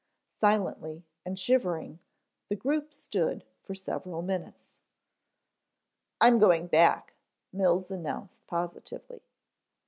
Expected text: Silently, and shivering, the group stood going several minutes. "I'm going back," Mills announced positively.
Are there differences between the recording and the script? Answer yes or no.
yes